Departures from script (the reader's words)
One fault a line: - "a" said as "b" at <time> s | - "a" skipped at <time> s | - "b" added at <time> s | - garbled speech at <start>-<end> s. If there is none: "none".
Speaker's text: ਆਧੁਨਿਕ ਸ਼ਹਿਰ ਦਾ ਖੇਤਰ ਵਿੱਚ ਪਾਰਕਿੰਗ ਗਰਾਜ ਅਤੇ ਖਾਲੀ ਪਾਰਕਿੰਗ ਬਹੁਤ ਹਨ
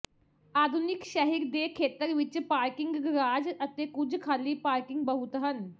- "ਦਾ" said as "ਦੇ" at 1.5 s
- "ਕੁਝ" added at 3.9 s